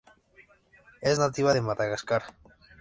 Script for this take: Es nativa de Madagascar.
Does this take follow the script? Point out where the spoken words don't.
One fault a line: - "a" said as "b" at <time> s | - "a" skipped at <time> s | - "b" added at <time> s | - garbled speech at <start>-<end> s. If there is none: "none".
none